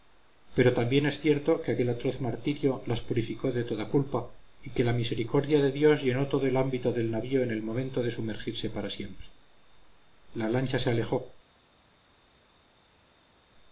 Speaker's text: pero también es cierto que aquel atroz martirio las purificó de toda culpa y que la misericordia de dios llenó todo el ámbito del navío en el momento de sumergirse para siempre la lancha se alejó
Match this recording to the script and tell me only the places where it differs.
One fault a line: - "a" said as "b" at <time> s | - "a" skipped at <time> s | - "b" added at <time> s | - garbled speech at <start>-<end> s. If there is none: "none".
none